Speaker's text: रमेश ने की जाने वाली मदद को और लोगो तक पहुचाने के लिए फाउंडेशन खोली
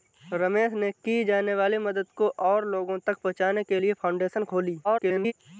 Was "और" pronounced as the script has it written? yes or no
yes